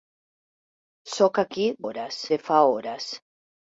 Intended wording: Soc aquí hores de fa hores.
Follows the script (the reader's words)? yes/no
yes